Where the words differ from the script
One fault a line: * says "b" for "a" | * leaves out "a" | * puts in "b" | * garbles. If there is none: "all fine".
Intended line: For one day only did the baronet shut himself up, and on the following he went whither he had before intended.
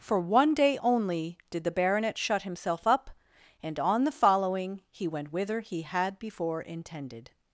all fine